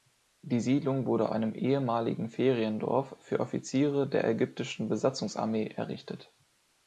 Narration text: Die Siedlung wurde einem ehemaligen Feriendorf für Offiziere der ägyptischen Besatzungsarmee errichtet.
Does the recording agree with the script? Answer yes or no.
yes